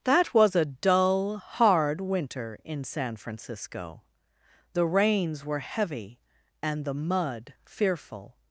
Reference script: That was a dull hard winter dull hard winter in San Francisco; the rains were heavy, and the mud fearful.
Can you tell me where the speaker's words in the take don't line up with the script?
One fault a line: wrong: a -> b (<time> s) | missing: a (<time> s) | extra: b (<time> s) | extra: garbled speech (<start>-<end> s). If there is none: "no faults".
missing: dull hard winter (2.6 s)